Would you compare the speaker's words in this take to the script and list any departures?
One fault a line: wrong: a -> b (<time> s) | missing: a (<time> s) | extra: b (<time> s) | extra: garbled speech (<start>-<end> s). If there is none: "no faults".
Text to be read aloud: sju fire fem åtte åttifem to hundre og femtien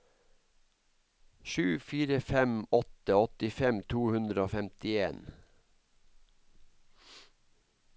no faults